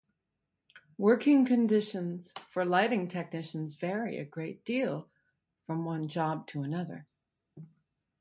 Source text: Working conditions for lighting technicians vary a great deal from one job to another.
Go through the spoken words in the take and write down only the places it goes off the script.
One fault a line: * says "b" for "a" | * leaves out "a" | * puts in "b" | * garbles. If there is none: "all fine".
all fine